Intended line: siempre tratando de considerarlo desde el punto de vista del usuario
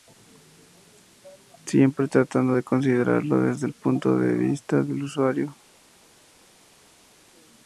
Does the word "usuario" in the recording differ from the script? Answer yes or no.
no